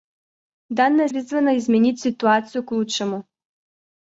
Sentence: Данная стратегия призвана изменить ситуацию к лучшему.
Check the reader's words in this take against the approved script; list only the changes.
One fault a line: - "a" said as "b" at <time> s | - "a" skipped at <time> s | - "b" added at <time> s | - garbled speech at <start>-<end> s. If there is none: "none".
- "стратегия" skipped at 1.1 s